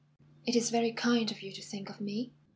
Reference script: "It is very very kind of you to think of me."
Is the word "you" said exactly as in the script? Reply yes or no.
yes